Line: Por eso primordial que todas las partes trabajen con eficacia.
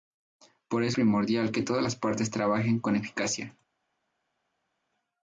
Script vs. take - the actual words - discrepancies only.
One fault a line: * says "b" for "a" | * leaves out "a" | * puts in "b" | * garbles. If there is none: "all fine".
all fine